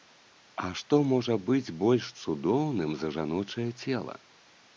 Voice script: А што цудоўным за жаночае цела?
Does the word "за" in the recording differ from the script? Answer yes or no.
no